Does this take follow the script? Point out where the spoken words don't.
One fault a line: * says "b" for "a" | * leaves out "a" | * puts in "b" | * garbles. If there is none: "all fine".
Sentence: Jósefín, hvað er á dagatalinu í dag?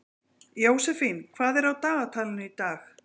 all fine